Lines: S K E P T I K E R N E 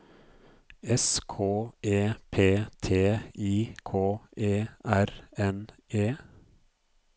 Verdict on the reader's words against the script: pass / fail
pass